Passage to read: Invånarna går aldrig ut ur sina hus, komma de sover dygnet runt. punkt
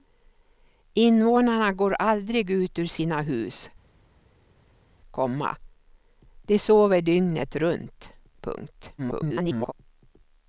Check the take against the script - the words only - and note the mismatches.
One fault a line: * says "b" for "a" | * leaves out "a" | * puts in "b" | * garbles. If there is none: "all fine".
* garbles